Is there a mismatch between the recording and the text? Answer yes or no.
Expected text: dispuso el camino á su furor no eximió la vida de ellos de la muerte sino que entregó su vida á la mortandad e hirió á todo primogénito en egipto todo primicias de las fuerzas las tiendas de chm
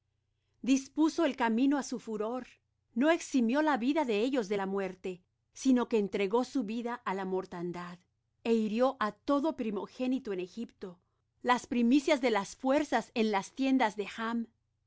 yes